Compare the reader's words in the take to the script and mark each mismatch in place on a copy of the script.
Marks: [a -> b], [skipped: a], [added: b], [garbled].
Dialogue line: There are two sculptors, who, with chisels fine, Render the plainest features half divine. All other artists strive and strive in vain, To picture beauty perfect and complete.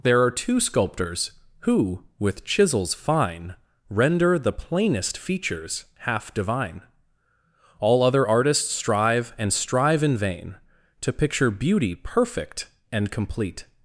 There are two sculptors, who, with chisels fine, Render the plainest features half divine. All other artists strive and strive in vain, To picture beauty perfect and complete.